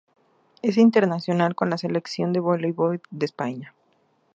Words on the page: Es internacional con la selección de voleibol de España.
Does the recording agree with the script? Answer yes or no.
yes